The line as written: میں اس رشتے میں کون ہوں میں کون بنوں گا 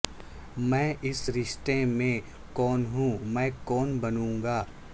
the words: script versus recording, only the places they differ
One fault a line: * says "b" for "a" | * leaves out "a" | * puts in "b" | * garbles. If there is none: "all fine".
all fine